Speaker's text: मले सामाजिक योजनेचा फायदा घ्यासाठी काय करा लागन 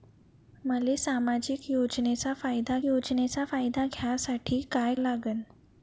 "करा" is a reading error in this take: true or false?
true